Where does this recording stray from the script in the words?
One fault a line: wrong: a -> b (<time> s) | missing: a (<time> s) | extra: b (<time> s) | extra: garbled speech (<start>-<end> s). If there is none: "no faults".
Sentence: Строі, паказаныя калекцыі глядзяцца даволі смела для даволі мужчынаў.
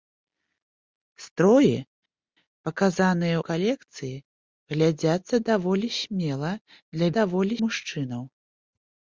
no faults